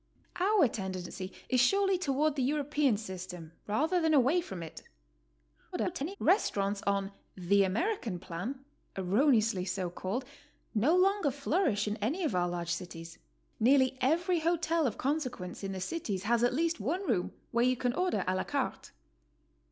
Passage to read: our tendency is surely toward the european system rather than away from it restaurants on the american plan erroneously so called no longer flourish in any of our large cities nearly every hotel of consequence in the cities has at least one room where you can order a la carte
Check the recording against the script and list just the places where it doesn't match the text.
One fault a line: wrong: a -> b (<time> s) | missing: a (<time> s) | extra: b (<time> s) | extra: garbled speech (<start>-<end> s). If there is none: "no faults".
extra: garbled speech (5.7-6.2 s)